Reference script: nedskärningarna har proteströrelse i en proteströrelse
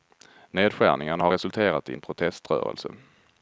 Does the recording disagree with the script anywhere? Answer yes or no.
yes